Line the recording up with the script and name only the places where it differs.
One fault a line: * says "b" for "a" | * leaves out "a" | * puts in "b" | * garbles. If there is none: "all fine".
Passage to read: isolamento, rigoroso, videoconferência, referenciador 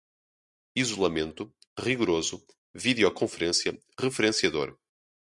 all fine